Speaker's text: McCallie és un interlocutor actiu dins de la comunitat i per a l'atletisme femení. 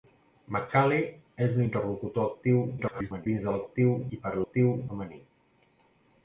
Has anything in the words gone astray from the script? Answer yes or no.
yes